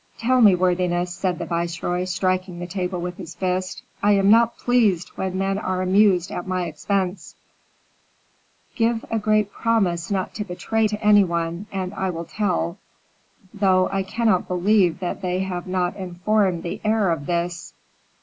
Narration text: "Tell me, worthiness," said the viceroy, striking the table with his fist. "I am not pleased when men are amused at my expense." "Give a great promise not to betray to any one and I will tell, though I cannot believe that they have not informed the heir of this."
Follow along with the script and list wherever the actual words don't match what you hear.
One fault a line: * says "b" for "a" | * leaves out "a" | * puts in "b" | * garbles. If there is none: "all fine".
all fine